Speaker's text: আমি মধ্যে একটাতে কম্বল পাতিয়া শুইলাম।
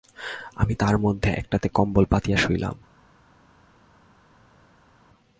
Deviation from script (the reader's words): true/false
true